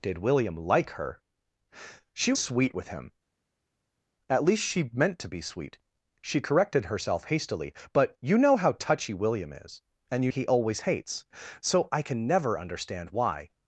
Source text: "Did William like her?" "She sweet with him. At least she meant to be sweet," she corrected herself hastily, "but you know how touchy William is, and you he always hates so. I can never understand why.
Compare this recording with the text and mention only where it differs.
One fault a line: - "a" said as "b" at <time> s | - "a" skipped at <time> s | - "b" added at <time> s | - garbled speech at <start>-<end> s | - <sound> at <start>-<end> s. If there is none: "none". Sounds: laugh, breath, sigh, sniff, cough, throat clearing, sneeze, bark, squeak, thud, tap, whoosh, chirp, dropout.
none